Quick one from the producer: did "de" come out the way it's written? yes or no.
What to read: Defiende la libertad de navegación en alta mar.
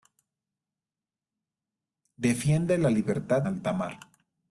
no